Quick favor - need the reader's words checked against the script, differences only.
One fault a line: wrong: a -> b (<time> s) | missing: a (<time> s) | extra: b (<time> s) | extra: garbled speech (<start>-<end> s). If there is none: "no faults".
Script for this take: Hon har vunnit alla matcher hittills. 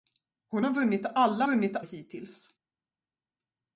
wrong: matcher -> vunnit (1.4 s)